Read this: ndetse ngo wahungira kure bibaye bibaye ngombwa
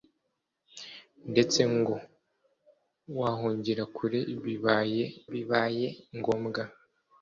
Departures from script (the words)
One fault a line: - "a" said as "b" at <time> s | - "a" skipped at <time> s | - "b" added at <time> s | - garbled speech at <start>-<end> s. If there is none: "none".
none